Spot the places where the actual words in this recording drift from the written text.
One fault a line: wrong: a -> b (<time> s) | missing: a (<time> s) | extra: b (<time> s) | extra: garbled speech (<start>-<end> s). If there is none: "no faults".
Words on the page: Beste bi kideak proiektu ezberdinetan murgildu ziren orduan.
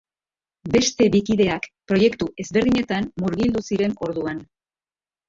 no faults